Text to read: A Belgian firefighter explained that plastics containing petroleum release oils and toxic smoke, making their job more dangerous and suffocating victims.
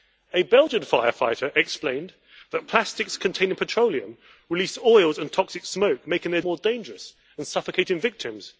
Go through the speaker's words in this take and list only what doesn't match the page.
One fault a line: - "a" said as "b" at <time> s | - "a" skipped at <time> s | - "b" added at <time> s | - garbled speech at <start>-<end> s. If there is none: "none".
- "job" skipped at 6.4 s